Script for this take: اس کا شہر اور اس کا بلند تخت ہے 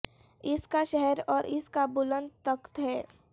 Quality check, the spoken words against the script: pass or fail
pass